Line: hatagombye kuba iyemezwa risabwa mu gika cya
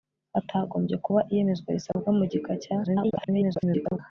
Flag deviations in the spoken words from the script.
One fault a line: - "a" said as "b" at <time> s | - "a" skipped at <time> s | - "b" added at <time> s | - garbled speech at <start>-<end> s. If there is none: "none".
- garbled speech at 2.8-4.0 s